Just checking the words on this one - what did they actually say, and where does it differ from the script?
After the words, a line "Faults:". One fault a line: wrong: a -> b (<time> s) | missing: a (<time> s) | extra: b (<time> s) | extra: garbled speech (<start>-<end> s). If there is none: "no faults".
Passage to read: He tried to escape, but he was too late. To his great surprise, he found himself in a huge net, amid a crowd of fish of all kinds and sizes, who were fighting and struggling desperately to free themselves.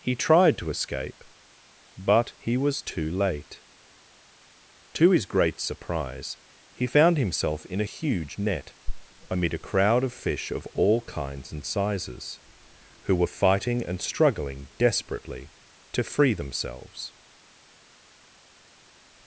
He tried to escape, but he was too late. To his great surprise, he found himself in a huge net, amid a crowd of fish of all kinds and sizes, who were fighting and struggling desperately to free themselves.
Faults:
no faults